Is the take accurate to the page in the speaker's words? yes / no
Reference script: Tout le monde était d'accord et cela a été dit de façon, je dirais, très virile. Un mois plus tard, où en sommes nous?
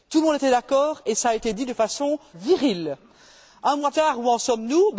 no